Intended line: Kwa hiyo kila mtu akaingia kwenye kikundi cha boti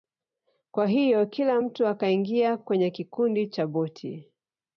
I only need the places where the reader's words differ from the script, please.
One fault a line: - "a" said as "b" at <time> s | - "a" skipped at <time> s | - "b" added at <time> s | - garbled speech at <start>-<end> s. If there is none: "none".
none